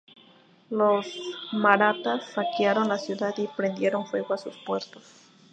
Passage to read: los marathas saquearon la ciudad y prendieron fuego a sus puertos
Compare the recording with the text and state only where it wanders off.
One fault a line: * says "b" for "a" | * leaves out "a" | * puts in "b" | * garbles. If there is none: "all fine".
all fine